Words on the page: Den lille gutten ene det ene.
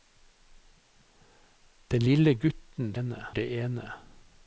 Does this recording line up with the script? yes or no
yes